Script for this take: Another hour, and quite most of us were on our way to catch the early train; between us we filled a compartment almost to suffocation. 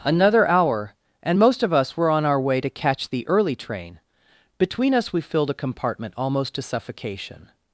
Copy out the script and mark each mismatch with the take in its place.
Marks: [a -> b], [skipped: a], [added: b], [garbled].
Another hour, and [skipped: quite] most of us were on our way to catch the early train; between us we filled a compartment almost to suffocation.